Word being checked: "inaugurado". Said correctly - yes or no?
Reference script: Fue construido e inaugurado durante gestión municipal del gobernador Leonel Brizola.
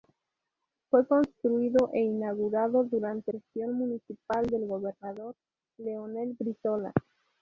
yes